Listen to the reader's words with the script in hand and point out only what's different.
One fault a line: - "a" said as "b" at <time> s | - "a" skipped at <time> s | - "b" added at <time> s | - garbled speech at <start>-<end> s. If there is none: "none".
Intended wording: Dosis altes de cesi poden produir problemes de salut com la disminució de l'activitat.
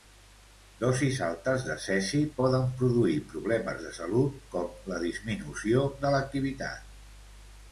none